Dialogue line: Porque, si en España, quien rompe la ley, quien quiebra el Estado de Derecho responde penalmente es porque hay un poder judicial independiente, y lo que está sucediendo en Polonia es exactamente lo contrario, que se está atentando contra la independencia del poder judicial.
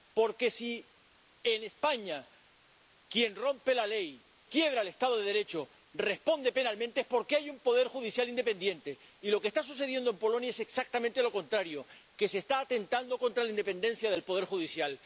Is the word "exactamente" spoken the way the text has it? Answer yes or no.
yes